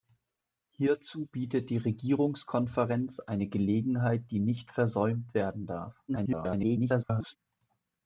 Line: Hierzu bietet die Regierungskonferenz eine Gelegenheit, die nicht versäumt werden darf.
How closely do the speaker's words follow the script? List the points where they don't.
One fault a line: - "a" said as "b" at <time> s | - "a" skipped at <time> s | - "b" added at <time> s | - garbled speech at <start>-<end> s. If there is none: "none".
- garbled speech at 6.1-7.4 s